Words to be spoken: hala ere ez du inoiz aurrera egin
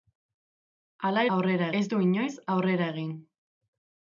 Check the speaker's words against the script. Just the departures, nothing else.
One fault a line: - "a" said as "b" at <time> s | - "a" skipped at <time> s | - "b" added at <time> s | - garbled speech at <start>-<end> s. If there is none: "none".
- "ere" said as "aurrera" at 1.4 s